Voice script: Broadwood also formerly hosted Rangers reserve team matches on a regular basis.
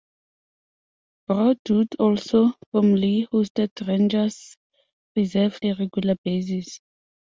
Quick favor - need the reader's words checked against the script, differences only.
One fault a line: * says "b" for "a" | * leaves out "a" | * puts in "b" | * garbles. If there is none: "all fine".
* leaves out "team matches on"